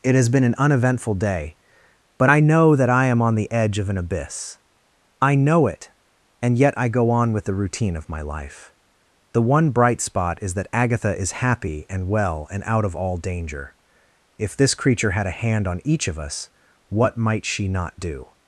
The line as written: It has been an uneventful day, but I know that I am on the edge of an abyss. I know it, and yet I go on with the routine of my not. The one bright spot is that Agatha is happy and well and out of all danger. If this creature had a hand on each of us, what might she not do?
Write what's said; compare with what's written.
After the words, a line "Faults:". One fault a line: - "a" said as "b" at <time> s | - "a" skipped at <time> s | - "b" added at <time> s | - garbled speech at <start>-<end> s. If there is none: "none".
It has been an uneventful day, but I know that I am on the edge of an abyss. I know it, and yet I go on with the routine of my life. The one bright spot is that Agatha is happy and well and out of all danger. If this creature had a hand on each of us, what might she not do?
Faults:
- "not" said as "life" at 8.2 s